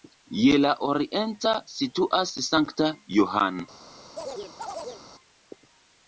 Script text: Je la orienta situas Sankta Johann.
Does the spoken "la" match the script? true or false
true